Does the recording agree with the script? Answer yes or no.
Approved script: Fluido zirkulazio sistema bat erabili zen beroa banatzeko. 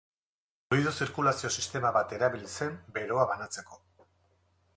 yes